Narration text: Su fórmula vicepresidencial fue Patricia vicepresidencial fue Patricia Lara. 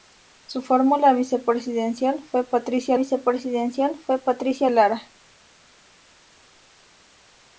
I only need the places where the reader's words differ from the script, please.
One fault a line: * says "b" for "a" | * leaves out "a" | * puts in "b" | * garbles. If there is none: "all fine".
all fine